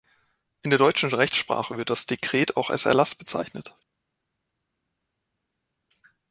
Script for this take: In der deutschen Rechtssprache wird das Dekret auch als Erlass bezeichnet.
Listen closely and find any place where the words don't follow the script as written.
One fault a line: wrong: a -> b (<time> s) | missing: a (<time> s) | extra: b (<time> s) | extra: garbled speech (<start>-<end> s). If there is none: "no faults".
no faults